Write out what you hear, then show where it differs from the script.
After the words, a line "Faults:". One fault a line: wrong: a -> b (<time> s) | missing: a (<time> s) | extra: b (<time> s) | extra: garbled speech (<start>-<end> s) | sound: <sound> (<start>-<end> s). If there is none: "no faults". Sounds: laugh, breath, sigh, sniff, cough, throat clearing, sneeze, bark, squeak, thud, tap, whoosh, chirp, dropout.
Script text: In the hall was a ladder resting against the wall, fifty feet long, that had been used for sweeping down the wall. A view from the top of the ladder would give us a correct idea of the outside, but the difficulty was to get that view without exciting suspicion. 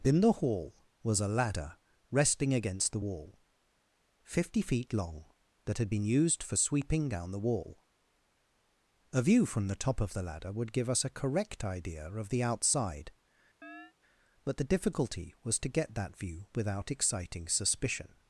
In the hall was a ladder resting against the wall, fifty feet long, that had been used for sweeping down the wall. A view from the top of the ladder would give us a correct idea of the outside, but the difficulty was to get that view without exciting suspicion.
Faults:
sound: chirp (13.6-13.9 s)